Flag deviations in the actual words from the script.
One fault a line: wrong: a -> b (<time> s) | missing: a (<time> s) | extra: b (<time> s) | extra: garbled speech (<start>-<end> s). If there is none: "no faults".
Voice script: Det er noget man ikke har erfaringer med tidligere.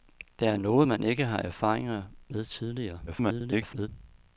extra: garbled speech (3.1-3.9 s)